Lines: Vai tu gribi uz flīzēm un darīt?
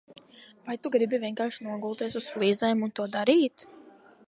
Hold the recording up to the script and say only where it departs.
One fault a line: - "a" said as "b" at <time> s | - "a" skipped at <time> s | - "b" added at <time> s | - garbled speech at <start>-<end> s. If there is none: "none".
- "vienkārši nogulties" added at 1.2 s
- "to" added at 3.0 s